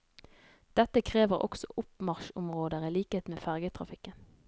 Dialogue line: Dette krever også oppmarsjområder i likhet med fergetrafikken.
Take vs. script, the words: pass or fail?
pass